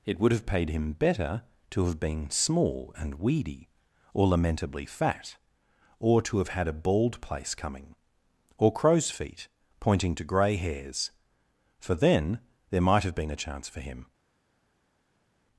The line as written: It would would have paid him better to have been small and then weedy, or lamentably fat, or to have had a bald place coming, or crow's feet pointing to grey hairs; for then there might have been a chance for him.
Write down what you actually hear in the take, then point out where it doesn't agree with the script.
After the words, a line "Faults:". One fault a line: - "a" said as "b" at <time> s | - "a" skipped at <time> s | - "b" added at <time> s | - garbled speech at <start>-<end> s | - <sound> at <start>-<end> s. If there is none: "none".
It would have paid him better to have been small and weedy, or lamentably fat, or to have had a bald place coming, or crow's feet pointing to grey hairs; for then there might have been a chance for him.
Faults:
- "would" skipped at 0.3 s
- "then" skipped at 3.1 s